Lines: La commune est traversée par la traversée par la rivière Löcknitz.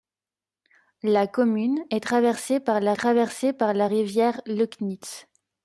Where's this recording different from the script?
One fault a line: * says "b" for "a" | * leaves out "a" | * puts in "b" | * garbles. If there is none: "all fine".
all fine